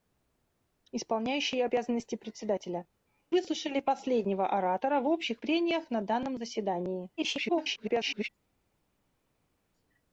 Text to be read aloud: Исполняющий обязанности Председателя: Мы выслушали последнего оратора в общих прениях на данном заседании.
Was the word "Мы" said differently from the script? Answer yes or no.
yes